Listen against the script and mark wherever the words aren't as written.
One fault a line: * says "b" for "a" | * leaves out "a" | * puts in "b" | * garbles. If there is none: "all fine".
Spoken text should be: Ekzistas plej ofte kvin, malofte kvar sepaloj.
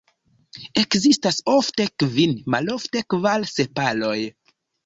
* leaves out "plej"